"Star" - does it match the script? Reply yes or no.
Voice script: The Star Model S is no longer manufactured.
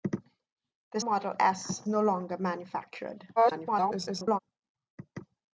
no